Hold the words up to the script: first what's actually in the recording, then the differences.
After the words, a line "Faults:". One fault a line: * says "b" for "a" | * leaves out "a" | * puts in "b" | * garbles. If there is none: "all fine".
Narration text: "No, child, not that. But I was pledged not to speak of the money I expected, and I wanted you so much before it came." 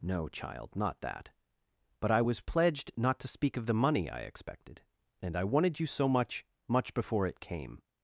"No, child, not that. But I was pledged not to speak of the money I expected, and I wanted you so much much before it came."
Faults:
* puts in "much"